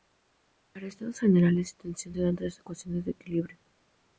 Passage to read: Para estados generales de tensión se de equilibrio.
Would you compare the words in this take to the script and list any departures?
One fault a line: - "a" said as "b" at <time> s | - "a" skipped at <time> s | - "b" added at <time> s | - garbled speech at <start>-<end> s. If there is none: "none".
- "dan tres ecuaciones" added at 2.2 s